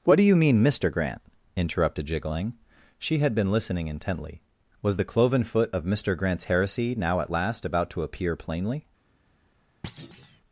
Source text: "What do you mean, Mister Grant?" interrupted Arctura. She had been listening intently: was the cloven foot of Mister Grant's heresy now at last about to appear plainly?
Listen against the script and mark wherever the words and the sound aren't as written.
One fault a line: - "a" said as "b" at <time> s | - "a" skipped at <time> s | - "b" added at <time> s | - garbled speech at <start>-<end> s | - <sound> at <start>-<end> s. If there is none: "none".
- "Arctura" said as "Jiggling" at 2.1 s
- thud at 9.8-10.4 s